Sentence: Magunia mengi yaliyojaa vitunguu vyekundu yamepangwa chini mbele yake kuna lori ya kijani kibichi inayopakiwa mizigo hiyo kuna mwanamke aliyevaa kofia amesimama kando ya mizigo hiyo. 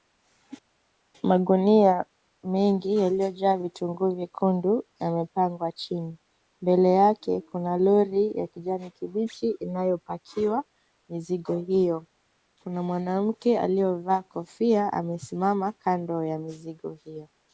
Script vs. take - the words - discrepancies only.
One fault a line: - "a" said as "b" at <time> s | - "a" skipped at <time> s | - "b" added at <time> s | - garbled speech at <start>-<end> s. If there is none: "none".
none